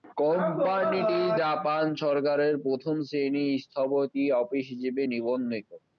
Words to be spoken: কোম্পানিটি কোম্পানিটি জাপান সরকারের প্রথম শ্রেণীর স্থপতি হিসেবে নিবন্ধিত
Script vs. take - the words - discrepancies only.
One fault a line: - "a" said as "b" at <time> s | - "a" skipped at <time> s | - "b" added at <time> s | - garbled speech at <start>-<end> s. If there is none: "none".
- "কোম্পানিটি" skipped at 1.2 s
- "অফিস" added at 4.4 s